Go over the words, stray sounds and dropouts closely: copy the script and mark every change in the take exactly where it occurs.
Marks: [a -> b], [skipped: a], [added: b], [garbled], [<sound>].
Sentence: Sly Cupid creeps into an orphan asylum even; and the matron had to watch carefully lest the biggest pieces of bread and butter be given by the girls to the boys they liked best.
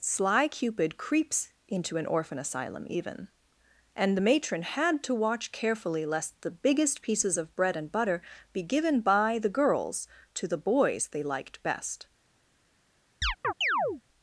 Sly Cupid creeps into an orphan asylum even; and the matron had to watch carefully lest the biggest pieces of bread and butter be given by the girls to the boys they liked best. [chirp]